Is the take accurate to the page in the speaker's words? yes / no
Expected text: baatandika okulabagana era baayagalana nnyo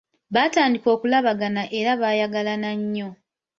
yes